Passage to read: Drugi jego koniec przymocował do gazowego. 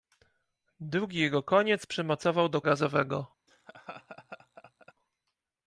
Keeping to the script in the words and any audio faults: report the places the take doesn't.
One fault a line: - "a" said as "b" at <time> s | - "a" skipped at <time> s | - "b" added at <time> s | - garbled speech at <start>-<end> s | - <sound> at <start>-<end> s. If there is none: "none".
- laugh at 3.5-4.9 s